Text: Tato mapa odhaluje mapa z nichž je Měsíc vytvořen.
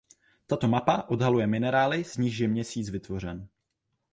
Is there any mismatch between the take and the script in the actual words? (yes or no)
yes